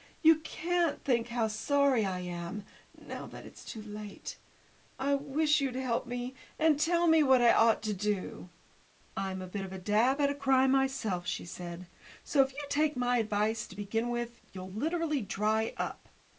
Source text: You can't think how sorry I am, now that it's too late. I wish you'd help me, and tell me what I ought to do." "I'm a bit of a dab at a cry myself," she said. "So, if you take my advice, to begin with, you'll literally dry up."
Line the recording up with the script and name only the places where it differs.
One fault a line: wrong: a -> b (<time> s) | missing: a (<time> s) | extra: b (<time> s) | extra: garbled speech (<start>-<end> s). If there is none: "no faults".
no faults